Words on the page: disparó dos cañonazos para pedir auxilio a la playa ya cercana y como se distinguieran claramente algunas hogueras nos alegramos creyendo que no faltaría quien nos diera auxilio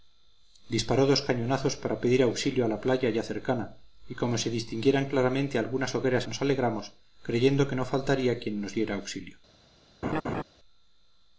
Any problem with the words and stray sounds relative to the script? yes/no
yes